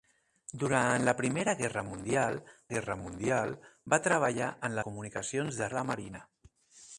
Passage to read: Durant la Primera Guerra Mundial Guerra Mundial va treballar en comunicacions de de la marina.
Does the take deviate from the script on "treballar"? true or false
false